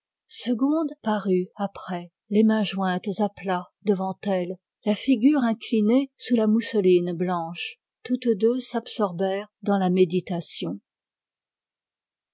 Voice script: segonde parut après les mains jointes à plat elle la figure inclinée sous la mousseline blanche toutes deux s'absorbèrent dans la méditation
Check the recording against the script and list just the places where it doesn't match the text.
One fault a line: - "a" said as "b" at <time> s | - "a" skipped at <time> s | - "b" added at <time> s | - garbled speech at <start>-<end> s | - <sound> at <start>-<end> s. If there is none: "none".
- "devant" added at 3.8 s